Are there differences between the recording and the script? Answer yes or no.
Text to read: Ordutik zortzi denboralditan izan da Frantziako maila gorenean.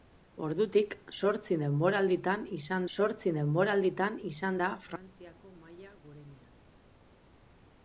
yes